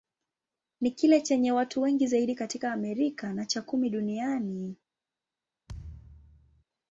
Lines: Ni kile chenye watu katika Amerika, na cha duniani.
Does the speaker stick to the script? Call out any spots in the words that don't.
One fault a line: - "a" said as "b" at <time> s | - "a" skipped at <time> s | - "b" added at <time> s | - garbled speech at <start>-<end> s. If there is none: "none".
- "wengi zaidi" added at 1.8 s
- "kumi" added at 3.6 s